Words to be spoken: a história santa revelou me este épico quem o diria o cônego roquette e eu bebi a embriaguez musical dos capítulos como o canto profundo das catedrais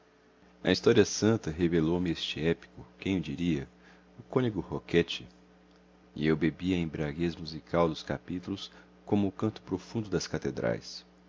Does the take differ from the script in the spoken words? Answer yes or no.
no